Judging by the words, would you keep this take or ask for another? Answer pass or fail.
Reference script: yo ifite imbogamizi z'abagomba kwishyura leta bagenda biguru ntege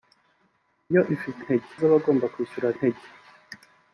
fail